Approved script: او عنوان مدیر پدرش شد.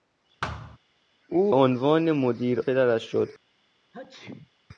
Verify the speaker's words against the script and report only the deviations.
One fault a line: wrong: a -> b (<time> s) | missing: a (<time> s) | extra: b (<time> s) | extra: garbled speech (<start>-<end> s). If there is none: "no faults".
no faults